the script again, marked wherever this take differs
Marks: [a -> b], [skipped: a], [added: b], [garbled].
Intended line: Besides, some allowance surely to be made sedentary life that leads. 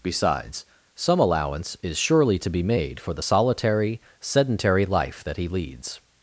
Besides, some allowance [added: is] surely to be made [added: for the solitary] sedentary life that [added: he] leads.